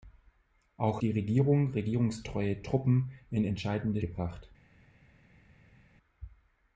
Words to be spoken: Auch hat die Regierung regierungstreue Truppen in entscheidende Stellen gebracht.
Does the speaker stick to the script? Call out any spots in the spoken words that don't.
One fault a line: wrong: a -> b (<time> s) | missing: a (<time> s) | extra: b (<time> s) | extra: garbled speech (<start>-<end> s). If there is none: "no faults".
missing: hat (1.0 s)
missing: Stellen (4.0 s)